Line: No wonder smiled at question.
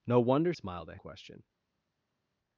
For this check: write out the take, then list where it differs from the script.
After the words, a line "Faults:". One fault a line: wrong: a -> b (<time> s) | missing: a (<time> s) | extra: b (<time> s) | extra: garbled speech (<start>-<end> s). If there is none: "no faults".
No wonder smiled at question.
Faults:
no faults